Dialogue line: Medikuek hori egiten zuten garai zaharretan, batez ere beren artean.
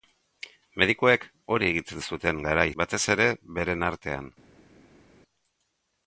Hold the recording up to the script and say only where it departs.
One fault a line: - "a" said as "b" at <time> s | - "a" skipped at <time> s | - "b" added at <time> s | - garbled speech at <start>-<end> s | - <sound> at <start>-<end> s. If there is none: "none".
- "zaharretan" skipped at 2.6 s